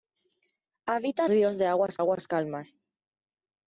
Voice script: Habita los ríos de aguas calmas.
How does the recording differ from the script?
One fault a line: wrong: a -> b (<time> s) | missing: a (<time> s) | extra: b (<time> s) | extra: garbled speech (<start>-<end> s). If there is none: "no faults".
missing: los (1.3 s)
extra: aguas (2.0 s)